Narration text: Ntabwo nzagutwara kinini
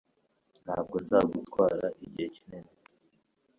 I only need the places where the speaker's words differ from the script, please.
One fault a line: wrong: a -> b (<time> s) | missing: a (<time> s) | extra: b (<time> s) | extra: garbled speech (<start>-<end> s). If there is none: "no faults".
extra: igihe (2.0 s)